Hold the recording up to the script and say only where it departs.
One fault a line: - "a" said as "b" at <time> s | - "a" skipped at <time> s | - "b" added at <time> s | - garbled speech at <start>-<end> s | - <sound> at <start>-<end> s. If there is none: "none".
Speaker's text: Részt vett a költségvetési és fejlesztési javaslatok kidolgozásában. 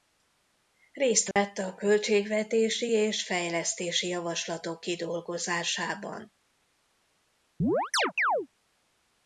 - dropout at 1.3-1.4 s
- chirp at 7.6-8.5 s